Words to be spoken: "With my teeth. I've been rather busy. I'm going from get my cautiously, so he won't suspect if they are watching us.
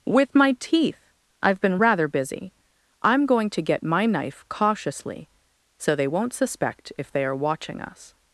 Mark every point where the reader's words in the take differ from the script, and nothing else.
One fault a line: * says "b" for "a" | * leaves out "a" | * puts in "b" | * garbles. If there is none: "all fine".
* says "to" for "from"
* puts in "knife"
* says "they" for "he"